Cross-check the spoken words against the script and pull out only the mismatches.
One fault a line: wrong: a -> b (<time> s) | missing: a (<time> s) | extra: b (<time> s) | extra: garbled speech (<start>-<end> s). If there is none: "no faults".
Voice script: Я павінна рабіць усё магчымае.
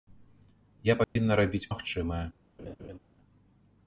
missing: усё (1.7 s)